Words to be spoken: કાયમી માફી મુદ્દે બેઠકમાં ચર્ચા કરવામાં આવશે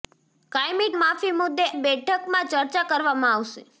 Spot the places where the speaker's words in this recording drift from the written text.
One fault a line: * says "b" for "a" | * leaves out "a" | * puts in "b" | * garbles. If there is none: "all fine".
all fine